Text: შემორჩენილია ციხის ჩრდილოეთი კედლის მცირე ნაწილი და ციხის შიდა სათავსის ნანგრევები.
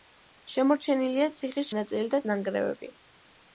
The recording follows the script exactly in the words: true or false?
false